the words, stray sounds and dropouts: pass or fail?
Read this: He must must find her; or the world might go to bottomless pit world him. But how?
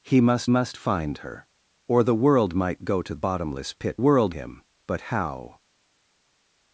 pass